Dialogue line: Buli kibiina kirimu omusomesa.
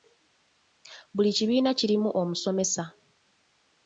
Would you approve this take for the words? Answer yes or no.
yes